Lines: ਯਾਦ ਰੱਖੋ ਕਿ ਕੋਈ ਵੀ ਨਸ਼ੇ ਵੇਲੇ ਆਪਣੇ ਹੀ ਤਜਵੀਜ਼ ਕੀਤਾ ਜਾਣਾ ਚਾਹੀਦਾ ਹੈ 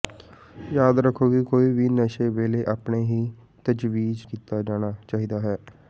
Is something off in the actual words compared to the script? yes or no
no